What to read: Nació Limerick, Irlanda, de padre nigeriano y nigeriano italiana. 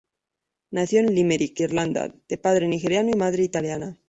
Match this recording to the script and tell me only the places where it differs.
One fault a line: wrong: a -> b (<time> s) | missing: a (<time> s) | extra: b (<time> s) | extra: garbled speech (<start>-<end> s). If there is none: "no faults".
extra: en (1.0 s)
wrong: nigeriano -> madre (3.2 s)